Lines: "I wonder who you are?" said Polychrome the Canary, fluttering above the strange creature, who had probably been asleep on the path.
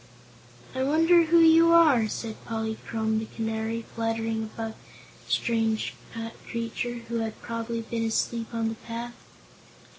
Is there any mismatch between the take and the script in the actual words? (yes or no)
no